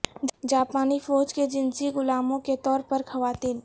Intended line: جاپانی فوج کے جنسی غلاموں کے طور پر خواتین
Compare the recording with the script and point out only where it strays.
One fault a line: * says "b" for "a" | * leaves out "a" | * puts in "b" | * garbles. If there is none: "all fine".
all fine